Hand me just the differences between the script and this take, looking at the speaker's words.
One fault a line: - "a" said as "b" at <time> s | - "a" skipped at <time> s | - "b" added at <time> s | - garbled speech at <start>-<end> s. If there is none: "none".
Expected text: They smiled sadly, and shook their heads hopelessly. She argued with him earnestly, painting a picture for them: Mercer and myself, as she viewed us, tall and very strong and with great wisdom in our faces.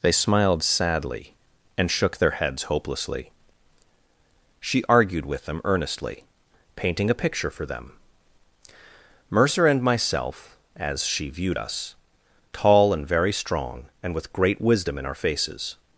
- "him" said as "them" at 5.5 s